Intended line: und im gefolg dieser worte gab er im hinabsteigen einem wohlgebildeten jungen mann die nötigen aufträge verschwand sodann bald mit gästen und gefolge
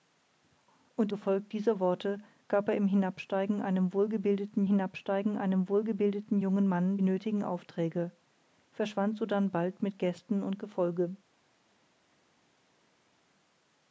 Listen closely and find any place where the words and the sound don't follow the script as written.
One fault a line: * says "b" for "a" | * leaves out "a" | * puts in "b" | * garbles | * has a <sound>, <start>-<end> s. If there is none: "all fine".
* leaves out "im"
* puts in "hinabsteigen einem wohlgebildeten"
* leaves out "die"